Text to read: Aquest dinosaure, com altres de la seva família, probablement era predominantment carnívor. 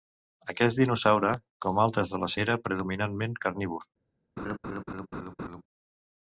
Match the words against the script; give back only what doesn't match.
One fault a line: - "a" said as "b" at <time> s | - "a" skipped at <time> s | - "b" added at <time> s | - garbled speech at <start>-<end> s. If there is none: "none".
- "seva família probablement" skipped at 2.3 s